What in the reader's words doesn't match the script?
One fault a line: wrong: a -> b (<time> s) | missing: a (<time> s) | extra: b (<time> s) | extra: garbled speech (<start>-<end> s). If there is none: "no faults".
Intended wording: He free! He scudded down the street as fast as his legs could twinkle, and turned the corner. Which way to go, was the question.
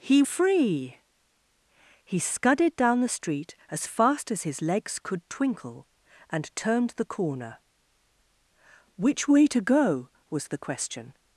no faults